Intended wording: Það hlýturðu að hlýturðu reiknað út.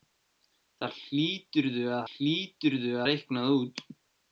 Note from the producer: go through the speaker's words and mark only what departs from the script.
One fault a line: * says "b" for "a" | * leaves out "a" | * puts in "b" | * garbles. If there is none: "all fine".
all fine